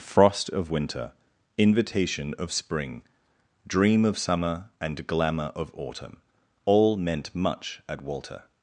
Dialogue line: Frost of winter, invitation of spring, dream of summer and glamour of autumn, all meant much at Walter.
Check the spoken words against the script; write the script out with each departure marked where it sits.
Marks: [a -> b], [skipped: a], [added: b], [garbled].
Frost of winter, invitation of spring, dream of summer and glamour of autumn, all meant much at Walter.